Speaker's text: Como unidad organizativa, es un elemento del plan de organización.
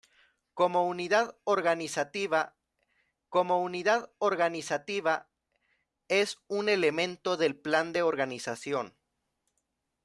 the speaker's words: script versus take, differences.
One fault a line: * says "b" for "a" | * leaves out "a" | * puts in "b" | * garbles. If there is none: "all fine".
* puts in "como unidad organizativa"